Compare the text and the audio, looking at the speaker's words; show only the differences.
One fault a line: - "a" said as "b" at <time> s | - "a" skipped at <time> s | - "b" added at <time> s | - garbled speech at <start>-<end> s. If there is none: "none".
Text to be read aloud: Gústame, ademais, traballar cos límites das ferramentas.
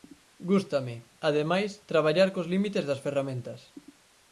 none